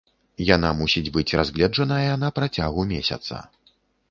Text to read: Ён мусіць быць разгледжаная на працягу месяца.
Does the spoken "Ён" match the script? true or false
false